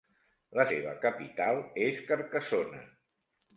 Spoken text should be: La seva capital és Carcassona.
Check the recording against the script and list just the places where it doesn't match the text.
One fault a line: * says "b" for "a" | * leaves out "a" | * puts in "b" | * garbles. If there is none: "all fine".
all fine